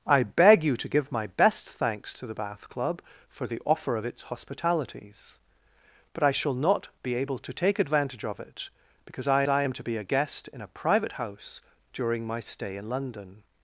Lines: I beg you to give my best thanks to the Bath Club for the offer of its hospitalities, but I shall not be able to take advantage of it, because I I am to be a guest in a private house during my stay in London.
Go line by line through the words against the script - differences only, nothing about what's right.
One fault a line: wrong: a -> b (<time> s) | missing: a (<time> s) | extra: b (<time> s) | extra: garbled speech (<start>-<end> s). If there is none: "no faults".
no faults